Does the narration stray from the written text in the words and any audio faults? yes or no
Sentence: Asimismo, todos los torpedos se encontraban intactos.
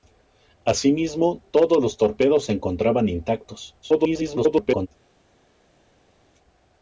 yes